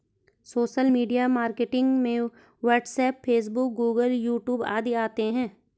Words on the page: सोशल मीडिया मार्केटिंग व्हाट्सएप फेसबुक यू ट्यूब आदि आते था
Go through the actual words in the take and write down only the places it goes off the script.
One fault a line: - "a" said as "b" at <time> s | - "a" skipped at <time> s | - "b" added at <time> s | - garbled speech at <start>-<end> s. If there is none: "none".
- "में" added at 2.0 s
- "गूगल" added at 3.7 s
- "था" said as "है" at 5.3 s